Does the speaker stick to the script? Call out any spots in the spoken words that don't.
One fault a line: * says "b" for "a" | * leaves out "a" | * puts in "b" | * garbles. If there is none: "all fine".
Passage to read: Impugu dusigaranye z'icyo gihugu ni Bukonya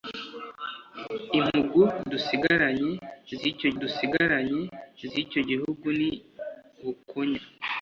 * puts in "dusigaranye z'icyo"